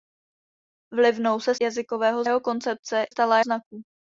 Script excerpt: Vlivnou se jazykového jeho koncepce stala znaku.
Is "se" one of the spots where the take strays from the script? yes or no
no